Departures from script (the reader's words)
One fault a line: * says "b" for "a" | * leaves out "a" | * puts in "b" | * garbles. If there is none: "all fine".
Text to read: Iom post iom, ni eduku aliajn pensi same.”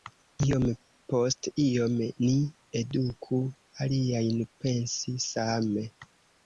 all fine